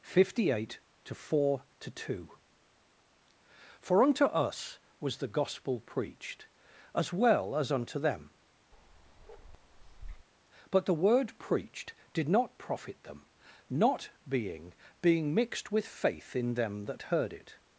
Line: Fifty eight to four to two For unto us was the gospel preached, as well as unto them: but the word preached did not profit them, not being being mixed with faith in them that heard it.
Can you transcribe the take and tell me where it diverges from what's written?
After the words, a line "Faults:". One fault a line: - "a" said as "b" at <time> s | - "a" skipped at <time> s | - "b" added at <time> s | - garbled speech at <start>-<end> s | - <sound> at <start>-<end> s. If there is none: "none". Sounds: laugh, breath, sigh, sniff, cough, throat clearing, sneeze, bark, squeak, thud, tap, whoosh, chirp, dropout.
Fifty eight to four to two For unto us was the gospel preached, as well as unto them: but the word preached did not profit them, not being being mixed with faith in them that heard it.
Faults:
- bark at 8.7-10.3 s